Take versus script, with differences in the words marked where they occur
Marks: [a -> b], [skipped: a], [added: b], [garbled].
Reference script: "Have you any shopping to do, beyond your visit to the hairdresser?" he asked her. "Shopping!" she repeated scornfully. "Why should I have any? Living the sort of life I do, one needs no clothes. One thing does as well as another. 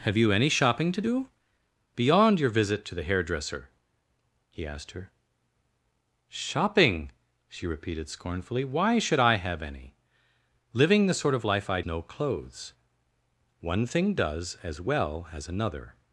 "Have you any shopping to do, beyond your visit to the hairdresser?" he asked her. "Shopping!" she repeated scornfully. "Why should I have any? Living the sort of life I [skipped: do, one needs] no clothes. One thing does as well as another.